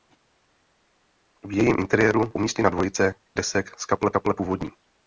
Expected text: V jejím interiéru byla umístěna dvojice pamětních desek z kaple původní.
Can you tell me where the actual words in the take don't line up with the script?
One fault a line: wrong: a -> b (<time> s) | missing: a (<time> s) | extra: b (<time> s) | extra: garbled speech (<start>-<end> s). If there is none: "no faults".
missing: byla (2.3 s)
missing: pamětních (3.1 s)
extra: kaple (4.1 s)